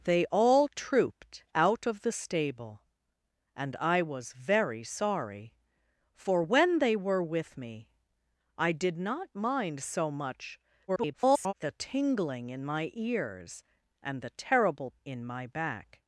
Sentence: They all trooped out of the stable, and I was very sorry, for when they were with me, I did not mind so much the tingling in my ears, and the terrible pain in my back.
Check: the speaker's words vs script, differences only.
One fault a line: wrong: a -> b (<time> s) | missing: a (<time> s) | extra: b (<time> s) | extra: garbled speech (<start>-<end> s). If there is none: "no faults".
extra: garbled speech (10.9-11.5 s)
missing: pain (14.9 s)